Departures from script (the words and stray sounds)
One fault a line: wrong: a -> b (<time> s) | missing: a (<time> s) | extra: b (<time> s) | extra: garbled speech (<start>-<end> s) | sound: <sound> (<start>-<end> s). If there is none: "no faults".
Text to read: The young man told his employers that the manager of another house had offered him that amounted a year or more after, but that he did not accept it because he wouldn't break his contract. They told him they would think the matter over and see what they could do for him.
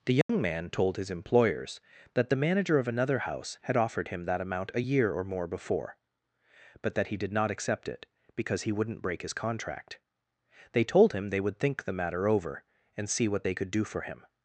sound: dropout (0.2-0.3 s)
wrong: amounted -> amount (4.4 s)
wrong: after -> before (5.5 s)